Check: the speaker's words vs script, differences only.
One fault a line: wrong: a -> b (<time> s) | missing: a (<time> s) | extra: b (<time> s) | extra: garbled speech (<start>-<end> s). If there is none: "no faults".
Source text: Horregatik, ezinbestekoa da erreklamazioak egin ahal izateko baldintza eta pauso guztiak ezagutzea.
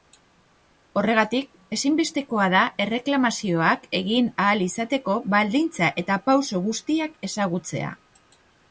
no faults